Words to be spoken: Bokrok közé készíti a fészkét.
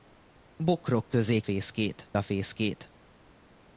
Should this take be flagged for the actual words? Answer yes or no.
yes